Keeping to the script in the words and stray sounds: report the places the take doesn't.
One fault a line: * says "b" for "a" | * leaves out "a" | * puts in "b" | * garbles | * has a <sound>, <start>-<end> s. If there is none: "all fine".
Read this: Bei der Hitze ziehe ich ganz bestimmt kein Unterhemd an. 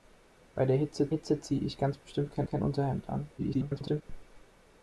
* puts in "Hitze"
* puts in "kein"
* garbles